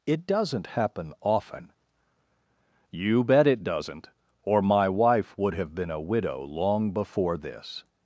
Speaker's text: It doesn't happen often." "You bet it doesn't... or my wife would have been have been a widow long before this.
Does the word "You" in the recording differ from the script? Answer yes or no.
no